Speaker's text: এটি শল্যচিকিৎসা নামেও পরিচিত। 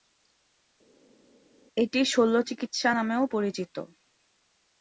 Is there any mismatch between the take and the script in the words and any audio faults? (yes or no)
no